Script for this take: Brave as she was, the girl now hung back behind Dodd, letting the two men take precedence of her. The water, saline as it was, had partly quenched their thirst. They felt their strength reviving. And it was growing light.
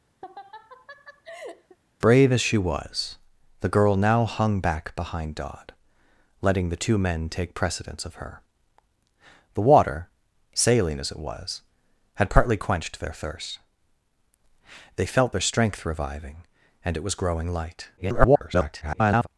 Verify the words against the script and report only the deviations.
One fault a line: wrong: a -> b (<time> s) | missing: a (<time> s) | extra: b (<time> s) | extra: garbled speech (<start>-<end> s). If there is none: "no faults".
extra: garbled speech (18.0-19.3 s)